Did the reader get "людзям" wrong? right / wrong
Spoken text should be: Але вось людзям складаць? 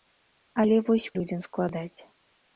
right